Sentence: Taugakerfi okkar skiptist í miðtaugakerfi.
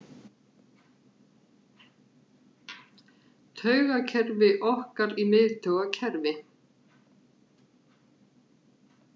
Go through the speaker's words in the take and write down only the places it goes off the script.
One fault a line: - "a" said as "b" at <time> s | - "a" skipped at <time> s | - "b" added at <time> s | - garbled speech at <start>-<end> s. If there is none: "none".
- "skiptist" skipped at 5.1 s